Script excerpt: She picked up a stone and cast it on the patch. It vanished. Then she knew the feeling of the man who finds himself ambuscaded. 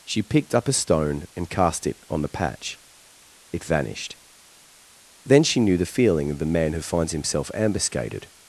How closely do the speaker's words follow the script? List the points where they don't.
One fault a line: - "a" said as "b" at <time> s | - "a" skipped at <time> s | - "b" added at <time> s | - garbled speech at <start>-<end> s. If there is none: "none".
none